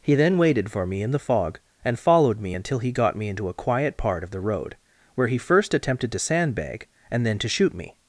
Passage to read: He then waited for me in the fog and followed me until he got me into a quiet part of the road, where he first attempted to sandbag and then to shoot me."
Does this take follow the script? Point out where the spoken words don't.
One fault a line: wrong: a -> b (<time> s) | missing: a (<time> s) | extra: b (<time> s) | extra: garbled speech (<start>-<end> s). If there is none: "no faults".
no faults